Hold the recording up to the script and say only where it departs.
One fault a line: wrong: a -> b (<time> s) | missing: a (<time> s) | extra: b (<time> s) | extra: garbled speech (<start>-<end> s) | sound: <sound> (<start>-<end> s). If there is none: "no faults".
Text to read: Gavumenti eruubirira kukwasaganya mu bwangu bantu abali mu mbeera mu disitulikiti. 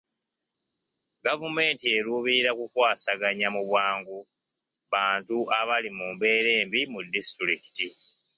extra: embi (6.6 s)